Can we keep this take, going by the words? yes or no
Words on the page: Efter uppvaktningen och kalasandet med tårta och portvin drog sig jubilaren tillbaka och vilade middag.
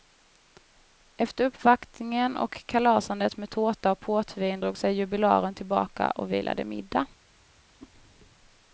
yes